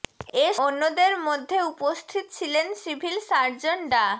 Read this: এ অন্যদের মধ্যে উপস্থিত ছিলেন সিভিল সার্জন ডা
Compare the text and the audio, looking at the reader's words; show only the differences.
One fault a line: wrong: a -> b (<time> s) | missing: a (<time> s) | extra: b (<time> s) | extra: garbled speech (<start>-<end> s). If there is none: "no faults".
no faults